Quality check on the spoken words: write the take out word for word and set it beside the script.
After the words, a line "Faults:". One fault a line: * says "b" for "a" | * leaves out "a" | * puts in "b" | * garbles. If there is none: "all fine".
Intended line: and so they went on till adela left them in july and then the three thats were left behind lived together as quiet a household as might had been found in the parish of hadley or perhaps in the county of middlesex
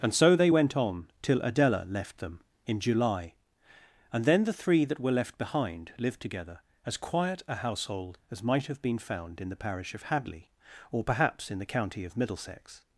and so they went on till adela left them in july and then the three that were left behind lived together as quiet a household as might have been found in the parish of hadley or perhaps in the county of middlesex
Faults:
* says "that" for "thats"
* says "have" for "had"